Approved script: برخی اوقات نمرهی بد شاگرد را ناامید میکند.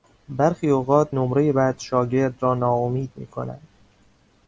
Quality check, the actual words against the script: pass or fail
pass